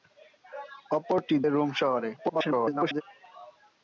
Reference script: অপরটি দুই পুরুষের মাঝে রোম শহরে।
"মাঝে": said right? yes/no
no